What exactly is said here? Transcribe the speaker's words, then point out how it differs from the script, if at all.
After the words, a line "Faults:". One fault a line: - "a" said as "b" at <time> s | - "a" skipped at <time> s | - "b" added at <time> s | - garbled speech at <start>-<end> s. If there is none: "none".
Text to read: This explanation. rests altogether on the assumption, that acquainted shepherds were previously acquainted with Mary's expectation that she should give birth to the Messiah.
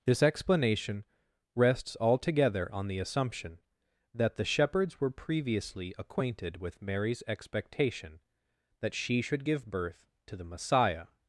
This explanation. rests altogether on the assumption, that the shepherds were previously acquainted with Mary's expectation that she should give birth to the Messiah.
Faults:
- "acquainted" said as "the" at 4.3 s